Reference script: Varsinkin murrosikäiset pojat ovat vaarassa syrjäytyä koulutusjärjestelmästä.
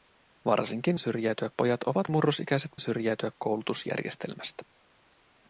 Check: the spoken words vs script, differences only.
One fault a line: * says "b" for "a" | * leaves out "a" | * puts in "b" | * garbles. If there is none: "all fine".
* says "syrjäytyä" for "murrosikäiset"
* says "murrosikäiset" for "vaarassa"